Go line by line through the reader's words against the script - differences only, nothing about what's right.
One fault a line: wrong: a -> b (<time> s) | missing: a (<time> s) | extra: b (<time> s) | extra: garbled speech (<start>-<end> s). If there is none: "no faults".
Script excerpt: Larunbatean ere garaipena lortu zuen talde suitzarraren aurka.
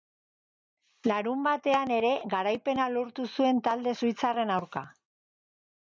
no faults